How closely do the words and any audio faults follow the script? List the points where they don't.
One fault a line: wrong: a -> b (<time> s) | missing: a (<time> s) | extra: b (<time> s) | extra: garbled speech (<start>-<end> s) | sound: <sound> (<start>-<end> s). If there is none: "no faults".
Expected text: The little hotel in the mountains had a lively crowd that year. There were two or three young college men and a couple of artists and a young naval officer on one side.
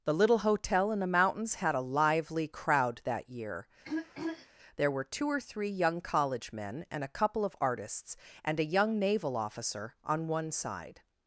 sound: throat clearing (3.8-4.5 s)